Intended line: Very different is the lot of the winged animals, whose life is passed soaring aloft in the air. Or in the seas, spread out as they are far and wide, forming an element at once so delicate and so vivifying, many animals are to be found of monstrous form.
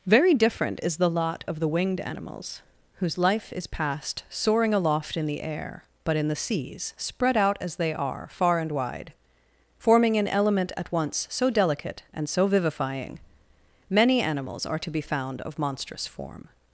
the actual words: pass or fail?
fail